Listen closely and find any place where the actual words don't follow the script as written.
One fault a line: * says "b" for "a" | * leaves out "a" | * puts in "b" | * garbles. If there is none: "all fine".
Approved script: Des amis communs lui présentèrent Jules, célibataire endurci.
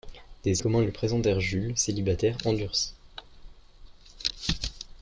* leaves out "amis"